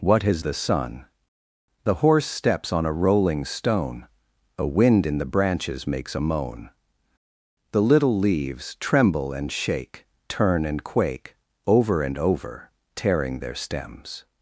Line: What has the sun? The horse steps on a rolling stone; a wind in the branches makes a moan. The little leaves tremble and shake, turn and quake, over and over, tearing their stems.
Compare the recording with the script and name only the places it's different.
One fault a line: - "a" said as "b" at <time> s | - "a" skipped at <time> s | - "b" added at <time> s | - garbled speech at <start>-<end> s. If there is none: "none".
none